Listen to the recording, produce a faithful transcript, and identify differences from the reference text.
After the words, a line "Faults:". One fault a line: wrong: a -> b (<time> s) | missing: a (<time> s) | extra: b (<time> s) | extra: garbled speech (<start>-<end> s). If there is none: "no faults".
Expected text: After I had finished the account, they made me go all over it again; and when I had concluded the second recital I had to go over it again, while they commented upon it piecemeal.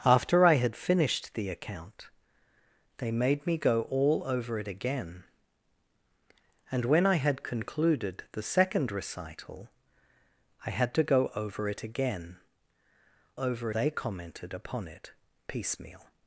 After I had finished the account, they made me go all over it again; and when I had concluded the second recital I had to go over it again, over they commented upon it piecemeal.
Faults:
wrong: while -> over (13.4 s)